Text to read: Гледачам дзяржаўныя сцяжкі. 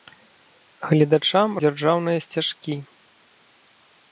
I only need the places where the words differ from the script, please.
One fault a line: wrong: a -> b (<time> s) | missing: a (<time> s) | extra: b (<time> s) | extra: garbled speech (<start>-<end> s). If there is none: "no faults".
no faults